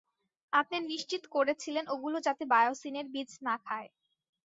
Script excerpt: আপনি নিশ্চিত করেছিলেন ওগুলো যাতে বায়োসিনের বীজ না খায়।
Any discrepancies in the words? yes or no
no